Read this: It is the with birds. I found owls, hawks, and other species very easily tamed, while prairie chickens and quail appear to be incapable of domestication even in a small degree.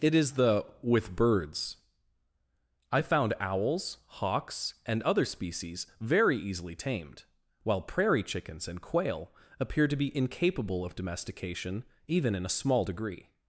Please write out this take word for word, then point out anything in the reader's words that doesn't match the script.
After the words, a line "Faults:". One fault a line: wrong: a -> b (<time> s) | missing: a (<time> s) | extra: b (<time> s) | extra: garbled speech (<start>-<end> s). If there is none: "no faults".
It is the with birds. I found owls, hawks, and other species very easily tamed, while prairie chickens and quail appear to be incapable of domestication even in a small degree.
Faults:
no faults